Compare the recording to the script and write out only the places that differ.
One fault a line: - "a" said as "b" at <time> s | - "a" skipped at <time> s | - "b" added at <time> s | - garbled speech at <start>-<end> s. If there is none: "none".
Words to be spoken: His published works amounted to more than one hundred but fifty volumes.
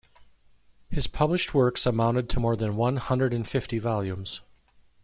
- "but" said as "and" at 3.3 s